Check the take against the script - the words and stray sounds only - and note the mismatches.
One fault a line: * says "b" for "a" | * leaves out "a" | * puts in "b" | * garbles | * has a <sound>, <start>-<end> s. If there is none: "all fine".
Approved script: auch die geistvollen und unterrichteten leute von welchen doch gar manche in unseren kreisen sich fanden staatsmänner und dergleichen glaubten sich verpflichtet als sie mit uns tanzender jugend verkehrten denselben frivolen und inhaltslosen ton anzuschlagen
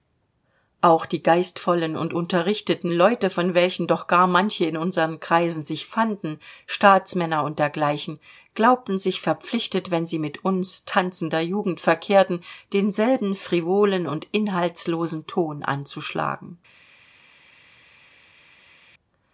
* says "wenn" for "als"